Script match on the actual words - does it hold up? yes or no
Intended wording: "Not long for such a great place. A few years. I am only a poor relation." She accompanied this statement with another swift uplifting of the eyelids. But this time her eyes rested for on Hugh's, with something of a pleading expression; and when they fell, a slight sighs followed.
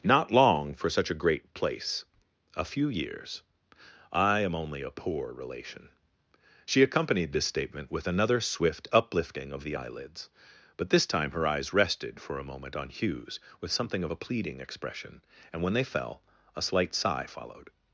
no